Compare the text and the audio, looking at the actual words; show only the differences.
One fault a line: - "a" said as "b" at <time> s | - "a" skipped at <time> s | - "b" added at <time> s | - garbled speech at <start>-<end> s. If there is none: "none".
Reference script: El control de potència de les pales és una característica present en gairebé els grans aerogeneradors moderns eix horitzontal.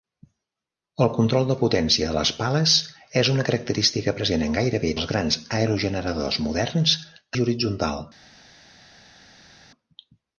none